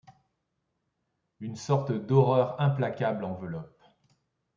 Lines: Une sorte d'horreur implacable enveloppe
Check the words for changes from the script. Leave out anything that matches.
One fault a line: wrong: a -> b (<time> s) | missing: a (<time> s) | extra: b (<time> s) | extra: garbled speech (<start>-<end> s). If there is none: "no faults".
no faults